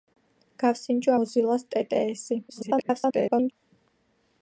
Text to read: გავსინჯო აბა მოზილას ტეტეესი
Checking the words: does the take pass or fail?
fail